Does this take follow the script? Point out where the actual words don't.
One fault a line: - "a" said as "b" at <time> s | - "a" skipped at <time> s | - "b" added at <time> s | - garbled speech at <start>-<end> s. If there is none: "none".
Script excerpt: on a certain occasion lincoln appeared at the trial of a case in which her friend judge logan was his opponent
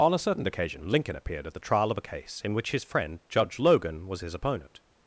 - "her" said as "his" at 2.7 s